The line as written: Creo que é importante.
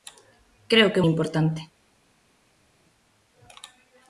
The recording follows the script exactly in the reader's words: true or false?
true